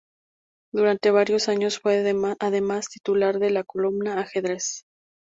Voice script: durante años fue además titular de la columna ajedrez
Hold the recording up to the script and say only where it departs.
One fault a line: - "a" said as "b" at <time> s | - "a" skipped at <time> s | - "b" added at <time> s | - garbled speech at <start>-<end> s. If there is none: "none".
- "varios" added at 1.1 s